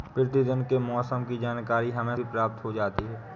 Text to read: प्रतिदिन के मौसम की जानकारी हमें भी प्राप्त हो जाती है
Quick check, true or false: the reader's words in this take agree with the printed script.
true